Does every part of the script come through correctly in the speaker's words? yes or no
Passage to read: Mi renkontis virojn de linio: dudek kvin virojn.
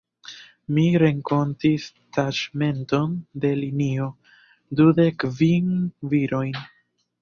no